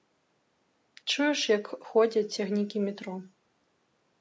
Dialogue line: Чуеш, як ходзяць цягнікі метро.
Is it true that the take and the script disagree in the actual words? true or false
false